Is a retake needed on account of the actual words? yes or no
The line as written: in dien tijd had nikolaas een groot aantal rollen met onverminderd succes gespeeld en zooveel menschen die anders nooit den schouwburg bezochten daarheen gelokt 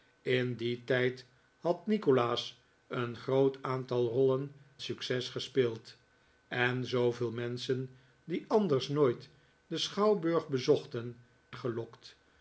yes